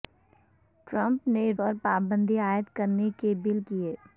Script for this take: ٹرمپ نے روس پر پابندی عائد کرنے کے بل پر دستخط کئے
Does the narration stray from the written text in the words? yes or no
yes